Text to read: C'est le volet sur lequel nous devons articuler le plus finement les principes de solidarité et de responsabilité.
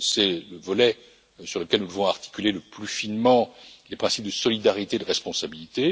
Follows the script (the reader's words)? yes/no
yes